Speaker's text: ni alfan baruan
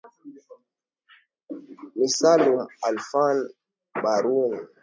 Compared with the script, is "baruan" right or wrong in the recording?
right